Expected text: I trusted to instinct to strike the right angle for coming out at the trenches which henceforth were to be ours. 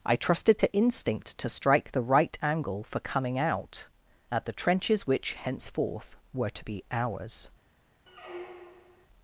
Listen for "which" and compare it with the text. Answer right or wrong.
right